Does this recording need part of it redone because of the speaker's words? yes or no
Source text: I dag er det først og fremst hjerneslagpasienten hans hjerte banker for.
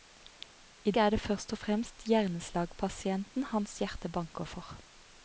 yes